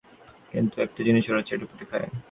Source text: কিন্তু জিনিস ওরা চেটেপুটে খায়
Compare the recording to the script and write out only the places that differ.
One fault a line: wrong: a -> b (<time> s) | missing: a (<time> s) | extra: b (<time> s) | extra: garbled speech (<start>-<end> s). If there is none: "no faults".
extra: একটা (0.8 s)